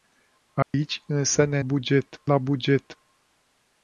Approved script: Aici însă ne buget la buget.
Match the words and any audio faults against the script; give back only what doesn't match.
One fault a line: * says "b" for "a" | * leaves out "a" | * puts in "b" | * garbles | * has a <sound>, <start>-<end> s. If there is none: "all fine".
* has a dropout, 0.6-0.7 s